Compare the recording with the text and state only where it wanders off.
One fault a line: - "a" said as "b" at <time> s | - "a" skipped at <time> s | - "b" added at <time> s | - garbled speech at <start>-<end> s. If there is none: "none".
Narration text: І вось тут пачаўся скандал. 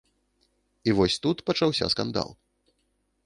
none